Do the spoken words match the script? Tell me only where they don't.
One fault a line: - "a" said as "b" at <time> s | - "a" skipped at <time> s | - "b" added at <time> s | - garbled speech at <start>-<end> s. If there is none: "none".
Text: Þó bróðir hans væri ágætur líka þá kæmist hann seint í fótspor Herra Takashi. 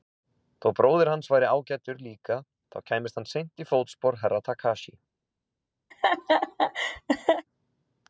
none